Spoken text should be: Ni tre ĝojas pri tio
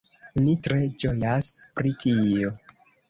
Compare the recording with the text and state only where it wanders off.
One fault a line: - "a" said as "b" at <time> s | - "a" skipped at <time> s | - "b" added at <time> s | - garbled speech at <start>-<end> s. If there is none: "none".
none